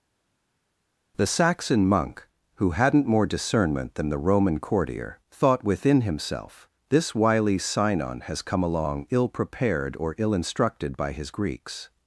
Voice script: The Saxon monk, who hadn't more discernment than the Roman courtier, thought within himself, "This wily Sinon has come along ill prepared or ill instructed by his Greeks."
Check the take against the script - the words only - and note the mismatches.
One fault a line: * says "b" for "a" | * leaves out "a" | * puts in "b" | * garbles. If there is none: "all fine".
all fine